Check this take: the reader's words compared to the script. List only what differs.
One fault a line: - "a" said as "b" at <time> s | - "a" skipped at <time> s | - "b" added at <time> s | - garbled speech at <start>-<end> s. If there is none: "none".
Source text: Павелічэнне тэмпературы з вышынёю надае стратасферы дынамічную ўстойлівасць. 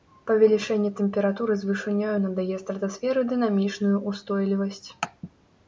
none